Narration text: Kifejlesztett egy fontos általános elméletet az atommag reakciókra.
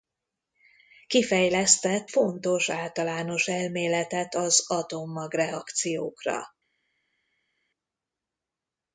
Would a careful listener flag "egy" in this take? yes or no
yes